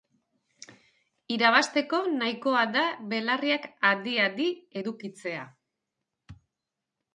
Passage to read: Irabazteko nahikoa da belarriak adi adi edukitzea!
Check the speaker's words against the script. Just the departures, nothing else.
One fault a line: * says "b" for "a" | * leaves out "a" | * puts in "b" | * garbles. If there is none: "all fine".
all fine